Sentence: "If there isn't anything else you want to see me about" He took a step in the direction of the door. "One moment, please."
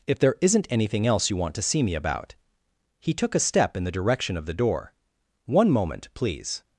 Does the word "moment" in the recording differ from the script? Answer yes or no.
no